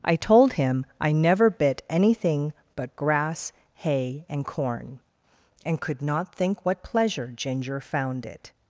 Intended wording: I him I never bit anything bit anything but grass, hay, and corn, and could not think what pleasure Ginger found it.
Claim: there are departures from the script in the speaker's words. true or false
true